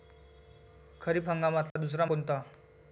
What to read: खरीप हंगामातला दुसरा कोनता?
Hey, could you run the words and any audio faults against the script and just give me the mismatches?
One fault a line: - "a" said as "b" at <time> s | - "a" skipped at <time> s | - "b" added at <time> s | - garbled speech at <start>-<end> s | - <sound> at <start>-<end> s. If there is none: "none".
- dropout at 1.7-1.8 s